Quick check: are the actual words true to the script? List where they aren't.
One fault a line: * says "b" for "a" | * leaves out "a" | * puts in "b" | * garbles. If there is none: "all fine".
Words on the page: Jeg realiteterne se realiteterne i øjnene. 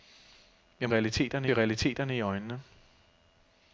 all fine